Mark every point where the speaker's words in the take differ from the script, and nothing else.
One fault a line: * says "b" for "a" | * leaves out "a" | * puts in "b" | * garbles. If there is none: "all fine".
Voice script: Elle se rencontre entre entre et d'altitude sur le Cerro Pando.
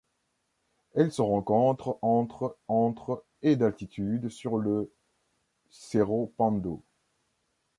all fine